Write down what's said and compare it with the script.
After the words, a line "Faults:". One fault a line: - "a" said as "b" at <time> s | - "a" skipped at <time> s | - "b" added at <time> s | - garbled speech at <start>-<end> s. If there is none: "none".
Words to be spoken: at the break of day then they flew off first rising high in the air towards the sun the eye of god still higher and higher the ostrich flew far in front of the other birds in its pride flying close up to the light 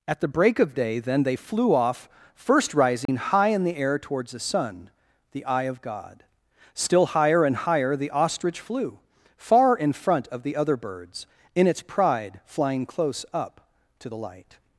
at the break of day then they flew off first rising high in the air towards the sun the eye of god still higher and higher the ostrich flew far in front of the other birds in its pride flying close up to the light
Faults:
none